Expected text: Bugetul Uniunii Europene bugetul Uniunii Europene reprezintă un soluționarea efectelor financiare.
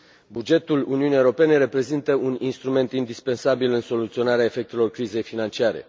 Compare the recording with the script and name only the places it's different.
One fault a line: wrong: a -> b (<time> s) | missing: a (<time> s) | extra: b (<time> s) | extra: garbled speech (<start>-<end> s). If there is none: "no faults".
wrong: bugetul Uniunii Europene reprezintă un -> reprezintă un instrument indispensabil în (1.6 s)
extra: crizei (4.9 s)